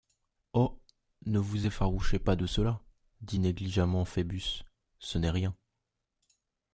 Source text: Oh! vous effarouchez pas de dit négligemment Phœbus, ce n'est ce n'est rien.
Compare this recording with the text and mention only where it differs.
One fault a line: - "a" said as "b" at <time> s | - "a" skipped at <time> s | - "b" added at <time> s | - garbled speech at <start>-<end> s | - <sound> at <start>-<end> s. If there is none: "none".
- "ne" added at 1.2 s
- "cela" added at 2.5 s
- "ce n'est" skipped at 5.3 s